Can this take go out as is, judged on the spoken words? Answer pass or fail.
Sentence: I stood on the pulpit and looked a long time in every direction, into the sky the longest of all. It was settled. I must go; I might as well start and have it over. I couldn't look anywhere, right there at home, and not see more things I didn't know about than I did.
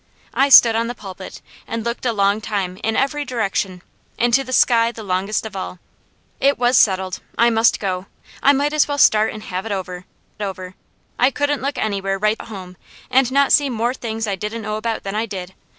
fail